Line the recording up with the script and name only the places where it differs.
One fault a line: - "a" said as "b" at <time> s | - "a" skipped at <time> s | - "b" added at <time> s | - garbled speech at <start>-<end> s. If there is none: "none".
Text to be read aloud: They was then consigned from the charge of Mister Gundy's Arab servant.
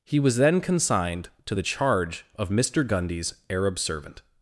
- "They" said as "He" at 0.0 s
- "from" said as "to" at 1.4 s